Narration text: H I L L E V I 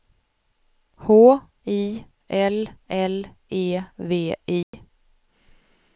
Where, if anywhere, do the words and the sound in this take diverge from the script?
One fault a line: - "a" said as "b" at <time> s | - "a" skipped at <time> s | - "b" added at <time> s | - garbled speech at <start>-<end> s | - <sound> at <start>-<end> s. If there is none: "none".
- dropout at 4.6-4.7 s